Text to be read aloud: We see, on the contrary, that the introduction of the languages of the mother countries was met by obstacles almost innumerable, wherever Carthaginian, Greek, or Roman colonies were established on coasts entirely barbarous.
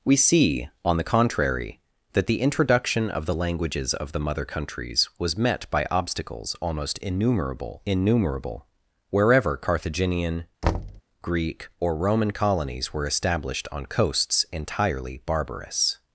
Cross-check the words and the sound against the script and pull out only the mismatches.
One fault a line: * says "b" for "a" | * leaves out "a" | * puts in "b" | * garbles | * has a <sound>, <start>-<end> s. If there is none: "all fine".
* puts in "innumerable"
* has a thud, 10.6-11.0 s